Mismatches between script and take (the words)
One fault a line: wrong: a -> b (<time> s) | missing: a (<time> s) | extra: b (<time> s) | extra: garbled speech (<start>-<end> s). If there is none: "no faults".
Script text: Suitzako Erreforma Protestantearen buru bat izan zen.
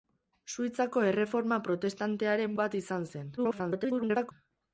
missing: buru (2.6 s)
extra: garbled speech (3.4-4.3 s)